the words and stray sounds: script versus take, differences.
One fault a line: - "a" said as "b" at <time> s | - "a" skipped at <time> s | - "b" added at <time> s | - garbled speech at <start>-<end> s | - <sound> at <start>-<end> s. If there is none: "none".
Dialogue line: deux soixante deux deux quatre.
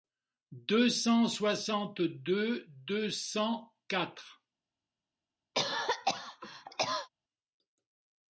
- "cent" added at 0.9 s
- "cent" added at 3.1 s
- cough at 5.5-7.1 s